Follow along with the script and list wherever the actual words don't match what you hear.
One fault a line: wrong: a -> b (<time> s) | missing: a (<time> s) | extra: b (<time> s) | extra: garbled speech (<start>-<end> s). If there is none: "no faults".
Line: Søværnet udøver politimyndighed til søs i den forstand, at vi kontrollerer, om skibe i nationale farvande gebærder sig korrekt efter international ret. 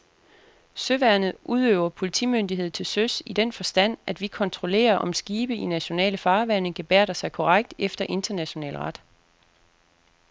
no faults